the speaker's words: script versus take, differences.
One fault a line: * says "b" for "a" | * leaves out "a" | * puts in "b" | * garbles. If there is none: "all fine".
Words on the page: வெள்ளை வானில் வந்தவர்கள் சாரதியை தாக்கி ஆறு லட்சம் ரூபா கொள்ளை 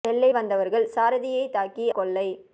* leaves out "வானில்"
* leaves out "ஆறு லட்சம் ரூபா"